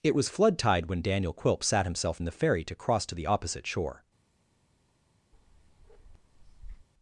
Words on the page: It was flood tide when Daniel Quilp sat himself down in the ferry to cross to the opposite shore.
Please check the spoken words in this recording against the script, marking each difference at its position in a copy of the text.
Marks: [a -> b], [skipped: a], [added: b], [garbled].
It was flood tide when Daniel Quilp sat himself [skipped: down] in the ferry to cross to the opposite shore.